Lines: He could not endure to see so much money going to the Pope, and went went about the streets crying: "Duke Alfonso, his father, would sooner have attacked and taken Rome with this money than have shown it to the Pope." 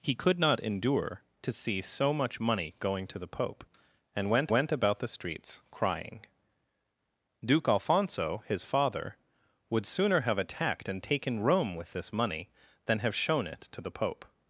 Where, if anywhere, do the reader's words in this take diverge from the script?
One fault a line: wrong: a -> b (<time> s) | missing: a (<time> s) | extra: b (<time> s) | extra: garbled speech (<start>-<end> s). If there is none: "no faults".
no faults